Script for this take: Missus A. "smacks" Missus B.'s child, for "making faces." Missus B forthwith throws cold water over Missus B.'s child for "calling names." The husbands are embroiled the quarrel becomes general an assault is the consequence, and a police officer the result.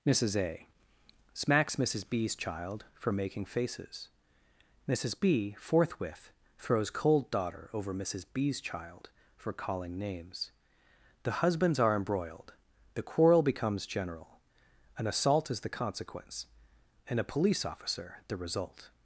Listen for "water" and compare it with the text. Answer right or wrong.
wrong